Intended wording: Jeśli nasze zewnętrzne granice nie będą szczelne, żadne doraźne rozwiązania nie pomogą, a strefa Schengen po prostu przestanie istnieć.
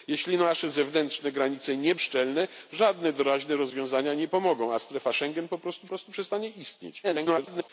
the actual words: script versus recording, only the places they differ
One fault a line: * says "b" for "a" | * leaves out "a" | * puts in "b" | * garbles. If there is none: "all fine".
* leaves out "będą"
* puts in "prostu"
* garbles